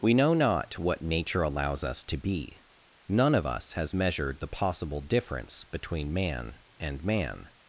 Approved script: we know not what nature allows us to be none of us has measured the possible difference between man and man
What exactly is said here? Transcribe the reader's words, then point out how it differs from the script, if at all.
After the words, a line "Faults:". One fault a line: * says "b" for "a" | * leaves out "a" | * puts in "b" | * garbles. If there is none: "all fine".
we know not what nature allows us to be none of us has measured the possible difference between man and man
Faults:
all fine